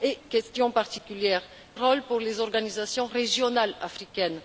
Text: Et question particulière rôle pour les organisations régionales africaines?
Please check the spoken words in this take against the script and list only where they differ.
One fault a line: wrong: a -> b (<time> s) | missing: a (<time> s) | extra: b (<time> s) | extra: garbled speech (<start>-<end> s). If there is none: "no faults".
no faults